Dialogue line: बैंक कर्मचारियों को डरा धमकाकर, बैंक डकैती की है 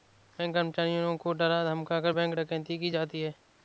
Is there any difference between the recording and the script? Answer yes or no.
yes